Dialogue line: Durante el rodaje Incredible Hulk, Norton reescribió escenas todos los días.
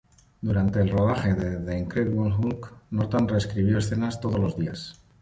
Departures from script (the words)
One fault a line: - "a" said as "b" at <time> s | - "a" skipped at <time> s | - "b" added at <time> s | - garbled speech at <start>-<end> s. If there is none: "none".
- "de The" added at 1.4 s